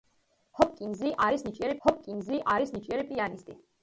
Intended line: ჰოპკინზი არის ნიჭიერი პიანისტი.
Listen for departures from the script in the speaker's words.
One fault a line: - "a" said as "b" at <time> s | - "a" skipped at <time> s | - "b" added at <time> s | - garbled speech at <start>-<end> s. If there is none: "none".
- "ჰოპკინზი არის ნიჭიერი" added at 1.9 s